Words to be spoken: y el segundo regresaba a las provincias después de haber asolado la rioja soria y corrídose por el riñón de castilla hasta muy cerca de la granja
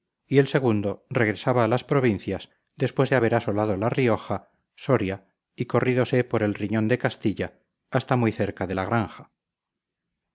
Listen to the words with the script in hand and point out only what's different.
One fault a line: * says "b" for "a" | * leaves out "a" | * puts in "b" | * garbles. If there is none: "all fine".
all fine